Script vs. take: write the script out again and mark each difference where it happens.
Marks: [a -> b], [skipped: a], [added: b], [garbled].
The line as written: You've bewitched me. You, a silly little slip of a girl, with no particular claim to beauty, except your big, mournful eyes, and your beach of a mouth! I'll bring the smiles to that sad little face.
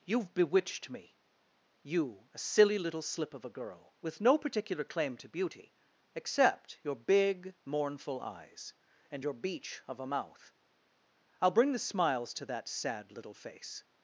You've bewitched me. You, a silly little slip of a girl, with no particular claim to beauty, except your big, mournful eyes, and your beach of a mouth! I'll bring the smiles to that sad little face.